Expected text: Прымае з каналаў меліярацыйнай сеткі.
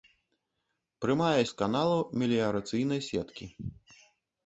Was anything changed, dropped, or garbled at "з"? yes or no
no